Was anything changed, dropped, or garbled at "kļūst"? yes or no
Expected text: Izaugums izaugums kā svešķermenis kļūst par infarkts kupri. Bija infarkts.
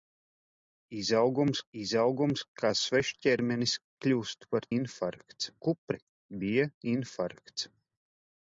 no